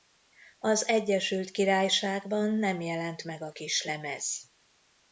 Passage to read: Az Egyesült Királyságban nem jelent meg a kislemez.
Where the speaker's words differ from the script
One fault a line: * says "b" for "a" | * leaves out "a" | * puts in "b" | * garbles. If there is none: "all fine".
all fine